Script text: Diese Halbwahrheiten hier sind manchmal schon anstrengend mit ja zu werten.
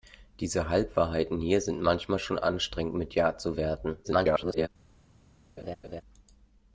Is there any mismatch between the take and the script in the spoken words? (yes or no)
yes